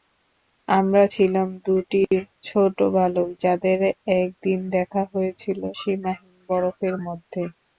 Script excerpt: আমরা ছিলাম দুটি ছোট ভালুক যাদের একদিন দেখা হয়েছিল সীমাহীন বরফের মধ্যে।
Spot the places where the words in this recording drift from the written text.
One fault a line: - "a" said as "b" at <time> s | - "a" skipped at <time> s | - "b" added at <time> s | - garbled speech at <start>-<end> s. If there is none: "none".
none